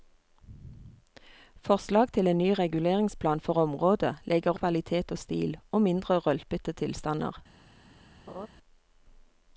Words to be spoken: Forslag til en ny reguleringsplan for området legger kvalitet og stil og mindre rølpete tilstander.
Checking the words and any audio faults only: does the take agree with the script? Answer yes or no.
no